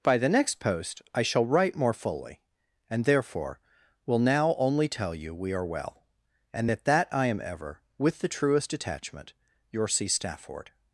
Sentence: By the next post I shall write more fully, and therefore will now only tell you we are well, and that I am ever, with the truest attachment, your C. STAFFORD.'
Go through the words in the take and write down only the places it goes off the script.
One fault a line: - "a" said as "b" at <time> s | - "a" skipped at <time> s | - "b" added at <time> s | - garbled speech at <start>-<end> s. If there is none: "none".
- "that" added at 6.9 s